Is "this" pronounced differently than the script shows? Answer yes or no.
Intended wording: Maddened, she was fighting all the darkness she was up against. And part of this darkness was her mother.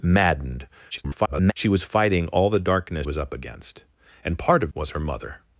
yes